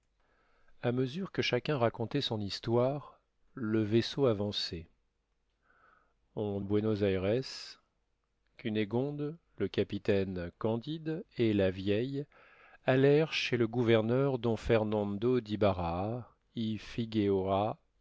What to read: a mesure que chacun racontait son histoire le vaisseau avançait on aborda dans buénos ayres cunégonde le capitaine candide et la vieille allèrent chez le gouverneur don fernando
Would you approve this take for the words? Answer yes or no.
no